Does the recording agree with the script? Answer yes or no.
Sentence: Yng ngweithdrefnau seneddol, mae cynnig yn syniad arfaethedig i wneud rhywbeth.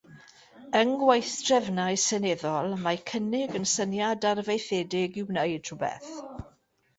yes